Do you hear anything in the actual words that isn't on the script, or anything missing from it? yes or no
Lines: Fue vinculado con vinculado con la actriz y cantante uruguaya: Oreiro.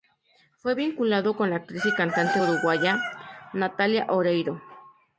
yes